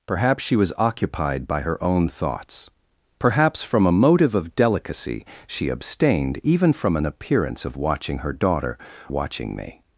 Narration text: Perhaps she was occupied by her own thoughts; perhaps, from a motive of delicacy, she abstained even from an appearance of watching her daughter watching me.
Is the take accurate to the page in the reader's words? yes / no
yes